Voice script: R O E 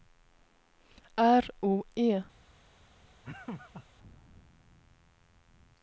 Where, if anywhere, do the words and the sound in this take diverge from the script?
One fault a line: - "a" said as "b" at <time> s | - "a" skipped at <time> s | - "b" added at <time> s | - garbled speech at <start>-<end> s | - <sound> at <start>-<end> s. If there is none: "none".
- laugh at 3.2-3.9 s